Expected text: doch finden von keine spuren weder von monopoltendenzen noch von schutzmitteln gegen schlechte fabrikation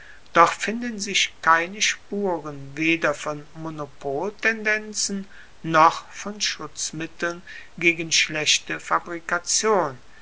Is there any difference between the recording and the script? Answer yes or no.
yes